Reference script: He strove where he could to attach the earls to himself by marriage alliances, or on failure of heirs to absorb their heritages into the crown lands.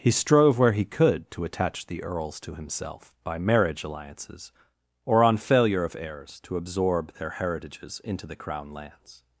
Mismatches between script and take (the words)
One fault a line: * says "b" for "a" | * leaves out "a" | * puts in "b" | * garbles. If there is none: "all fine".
all fine